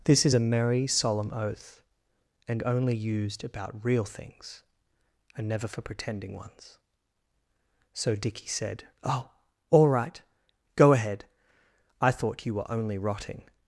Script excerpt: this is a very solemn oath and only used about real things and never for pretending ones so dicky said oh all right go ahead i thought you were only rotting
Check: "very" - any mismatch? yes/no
yes